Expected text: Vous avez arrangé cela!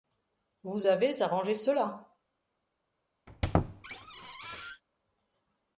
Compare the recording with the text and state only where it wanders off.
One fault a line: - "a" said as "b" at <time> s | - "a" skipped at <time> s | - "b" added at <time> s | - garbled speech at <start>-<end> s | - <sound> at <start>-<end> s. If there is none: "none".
- squeak at 3.3-4.8 s